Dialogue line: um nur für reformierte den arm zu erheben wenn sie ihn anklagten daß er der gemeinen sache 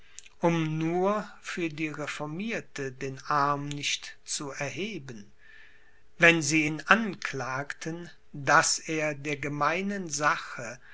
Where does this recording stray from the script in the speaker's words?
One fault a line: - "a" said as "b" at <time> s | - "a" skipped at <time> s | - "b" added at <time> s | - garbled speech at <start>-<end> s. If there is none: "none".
- "die" added at 1.7 s
- "nicht" added at 3.7 s